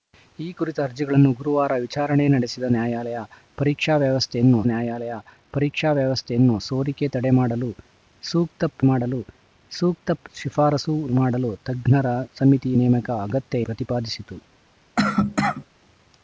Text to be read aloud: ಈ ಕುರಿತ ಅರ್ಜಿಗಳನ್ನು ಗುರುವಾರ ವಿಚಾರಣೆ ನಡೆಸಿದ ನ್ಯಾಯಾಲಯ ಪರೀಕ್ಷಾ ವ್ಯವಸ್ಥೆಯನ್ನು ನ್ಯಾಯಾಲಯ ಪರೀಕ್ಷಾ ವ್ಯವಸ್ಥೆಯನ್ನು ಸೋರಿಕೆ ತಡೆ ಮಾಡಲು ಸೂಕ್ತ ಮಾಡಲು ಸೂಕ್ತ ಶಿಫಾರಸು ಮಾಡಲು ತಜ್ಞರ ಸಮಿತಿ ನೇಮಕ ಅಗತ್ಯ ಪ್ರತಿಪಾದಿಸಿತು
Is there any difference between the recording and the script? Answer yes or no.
no